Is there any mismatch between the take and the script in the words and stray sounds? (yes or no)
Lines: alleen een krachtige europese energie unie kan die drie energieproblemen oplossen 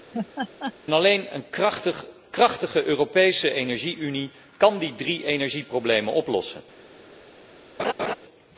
yes